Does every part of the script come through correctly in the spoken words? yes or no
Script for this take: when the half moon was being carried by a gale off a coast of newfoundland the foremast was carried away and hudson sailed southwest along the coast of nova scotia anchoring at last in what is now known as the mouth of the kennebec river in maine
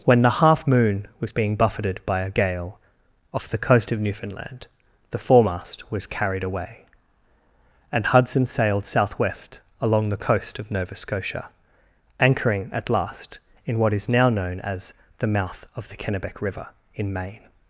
no